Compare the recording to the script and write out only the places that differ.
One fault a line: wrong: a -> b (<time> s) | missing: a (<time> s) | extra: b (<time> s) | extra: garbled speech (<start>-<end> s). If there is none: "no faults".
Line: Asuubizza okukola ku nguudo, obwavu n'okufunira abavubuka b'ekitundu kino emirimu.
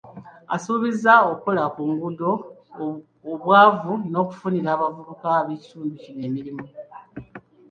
no faults